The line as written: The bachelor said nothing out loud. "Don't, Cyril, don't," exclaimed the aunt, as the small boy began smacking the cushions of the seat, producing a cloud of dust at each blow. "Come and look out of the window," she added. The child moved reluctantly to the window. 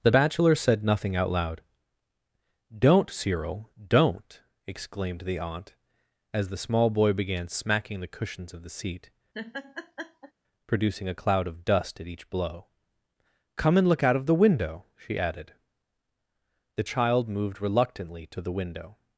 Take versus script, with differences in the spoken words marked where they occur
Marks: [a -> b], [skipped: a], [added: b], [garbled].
The bachelor said nothing out loud. "Don't, Cyril, don't," exclaimed the aunt, as the small boy began smacking the cushions of the seat, producing a cloud of dust at each blow. "Come and look out of the window," she added. The child moved reluctantly to the window.